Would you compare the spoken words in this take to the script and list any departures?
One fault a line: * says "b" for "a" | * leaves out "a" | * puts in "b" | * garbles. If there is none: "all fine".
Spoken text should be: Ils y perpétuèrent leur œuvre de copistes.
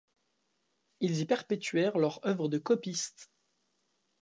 all fine